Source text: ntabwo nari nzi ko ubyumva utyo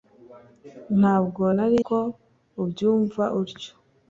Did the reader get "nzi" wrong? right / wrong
wrong